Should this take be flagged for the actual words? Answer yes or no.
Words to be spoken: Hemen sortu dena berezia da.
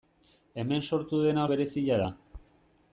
no